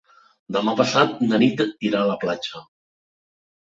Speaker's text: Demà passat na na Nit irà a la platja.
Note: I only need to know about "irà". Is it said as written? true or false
true